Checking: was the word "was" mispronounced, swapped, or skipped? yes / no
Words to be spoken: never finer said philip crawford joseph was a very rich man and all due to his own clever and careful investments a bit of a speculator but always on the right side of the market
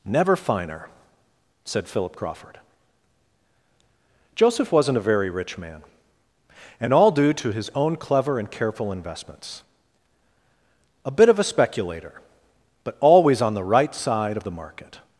yes